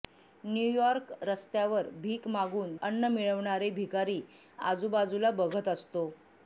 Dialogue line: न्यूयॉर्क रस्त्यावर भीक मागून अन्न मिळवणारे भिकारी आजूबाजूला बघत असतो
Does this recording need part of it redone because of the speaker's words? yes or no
no